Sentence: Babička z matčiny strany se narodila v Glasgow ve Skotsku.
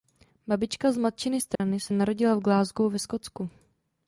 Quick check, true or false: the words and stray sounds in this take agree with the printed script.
false